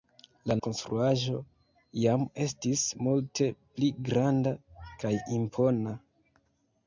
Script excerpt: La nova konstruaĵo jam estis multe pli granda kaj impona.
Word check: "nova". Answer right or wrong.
wrong